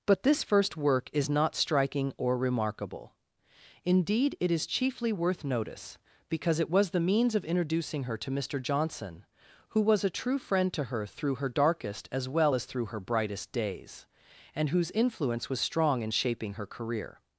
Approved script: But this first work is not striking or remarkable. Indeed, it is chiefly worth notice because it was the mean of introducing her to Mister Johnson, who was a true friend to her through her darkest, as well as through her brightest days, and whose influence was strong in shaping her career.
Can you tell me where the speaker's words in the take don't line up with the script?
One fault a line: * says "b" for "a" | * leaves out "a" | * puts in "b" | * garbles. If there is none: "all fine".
* says "means" for "mean"